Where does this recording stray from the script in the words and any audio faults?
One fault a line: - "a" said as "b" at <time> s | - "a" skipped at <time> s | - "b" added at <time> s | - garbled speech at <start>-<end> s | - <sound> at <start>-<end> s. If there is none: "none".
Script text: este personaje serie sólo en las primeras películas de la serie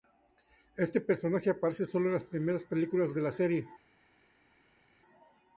- "serie" said as "aparece" at 1.5 s